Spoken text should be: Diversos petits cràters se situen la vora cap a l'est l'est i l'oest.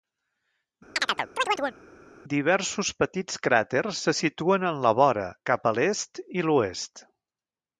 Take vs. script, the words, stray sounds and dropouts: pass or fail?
fail